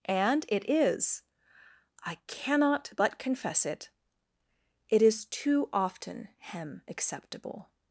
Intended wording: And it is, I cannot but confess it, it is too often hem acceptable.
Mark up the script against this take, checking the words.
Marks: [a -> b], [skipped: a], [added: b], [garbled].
And it is, I cannot but confess it, it is too often hem acceptable.